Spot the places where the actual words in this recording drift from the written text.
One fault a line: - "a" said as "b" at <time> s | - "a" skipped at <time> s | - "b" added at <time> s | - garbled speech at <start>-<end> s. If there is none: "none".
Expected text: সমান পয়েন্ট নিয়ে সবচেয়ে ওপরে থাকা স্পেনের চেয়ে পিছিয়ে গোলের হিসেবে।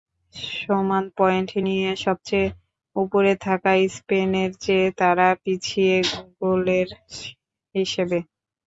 - "তারা" added at 5.0 s